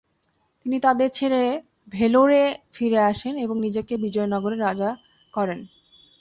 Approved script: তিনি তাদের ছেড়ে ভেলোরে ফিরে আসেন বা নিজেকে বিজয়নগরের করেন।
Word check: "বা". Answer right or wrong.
wrong